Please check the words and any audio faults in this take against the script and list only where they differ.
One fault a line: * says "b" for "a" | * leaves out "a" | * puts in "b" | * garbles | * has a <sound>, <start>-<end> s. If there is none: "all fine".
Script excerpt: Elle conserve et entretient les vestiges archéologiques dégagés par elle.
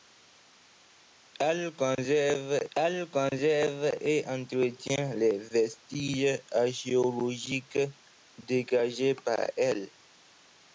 * puts in "elle conserve"